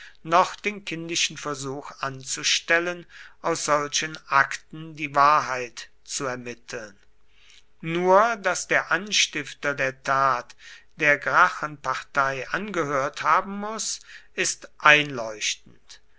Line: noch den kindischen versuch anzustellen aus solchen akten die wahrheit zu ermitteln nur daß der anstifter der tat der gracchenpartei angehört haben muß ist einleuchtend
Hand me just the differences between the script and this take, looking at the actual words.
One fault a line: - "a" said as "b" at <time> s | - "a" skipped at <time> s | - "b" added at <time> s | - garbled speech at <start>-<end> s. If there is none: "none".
none